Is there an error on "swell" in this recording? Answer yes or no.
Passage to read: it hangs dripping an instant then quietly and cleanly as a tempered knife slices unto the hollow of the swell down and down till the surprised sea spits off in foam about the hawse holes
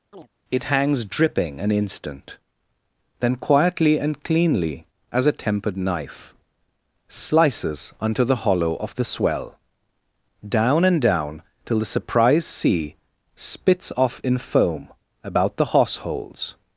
no